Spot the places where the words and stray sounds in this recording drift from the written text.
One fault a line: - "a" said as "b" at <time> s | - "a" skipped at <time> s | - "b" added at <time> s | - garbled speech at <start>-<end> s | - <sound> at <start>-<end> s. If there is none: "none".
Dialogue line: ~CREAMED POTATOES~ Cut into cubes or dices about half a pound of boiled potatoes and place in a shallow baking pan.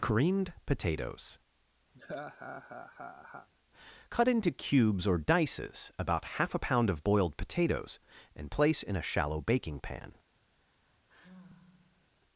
- laugh at 1.9-3.5 s
- sigh at 10.6-12.1 s